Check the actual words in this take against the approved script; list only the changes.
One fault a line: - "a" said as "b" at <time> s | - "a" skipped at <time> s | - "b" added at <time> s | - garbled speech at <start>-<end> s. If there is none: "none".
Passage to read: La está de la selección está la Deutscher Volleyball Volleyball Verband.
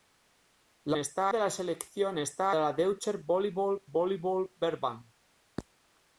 none